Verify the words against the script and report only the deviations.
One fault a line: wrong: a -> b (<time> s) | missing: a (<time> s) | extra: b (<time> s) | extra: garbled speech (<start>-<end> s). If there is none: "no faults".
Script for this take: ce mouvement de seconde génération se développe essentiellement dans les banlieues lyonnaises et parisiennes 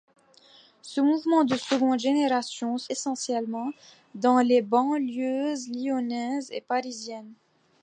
missing: développe (2.9 s)